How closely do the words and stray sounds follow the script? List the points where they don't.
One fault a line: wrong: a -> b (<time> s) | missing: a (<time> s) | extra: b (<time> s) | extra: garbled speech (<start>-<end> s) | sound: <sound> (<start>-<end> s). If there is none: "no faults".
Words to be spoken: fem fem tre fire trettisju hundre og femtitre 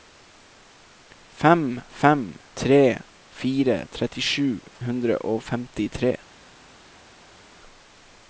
no faults